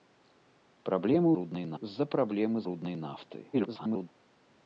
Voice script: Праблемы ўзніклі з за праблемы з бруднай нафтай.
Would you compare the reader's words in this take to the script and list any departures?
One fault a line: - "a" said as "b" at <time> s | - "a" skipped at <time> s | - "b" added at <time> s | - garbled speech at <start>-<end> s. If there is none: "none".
- "ўзніклі" said as "бруднай" at 1.4 s
- "з" skipped at 2.6 s
- garbled speech at 3.5-4.1 s